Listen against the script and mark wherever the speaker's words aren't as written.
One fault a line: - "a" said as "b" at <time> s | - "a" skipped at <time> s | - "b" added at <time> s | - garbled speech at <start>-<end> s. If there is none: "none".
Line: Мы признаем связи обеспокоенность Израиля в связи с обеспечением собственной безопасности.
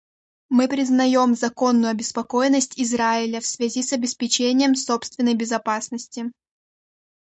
- "связи" said as "законную" at 1.3 s